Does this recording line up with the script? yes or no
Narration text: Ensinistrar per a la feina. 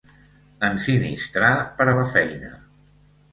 yes